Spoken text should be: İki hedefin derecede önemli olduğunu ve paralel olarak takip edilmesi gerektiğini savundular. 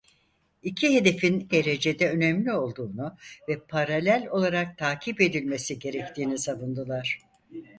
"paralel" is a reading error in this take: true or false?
false